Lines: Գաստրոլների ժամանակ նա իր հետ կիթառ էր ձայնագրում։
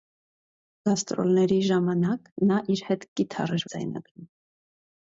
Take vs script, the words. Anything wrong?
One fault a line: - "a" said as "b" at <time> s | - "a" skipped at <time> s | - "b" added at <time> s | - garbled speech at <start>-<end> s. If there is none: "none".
none